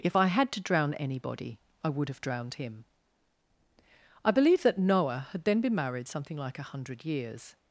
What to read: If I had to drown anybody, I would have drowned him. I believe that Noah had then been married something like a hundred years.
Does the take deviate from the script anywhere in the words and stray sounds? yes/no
no